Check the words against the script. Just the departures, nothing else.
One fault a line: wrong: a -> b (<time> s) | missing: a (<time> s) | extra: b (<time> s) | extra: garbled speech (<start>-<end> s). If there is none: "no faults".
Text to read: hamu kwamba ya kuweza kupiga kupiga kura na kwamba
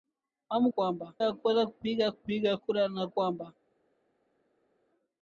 no faults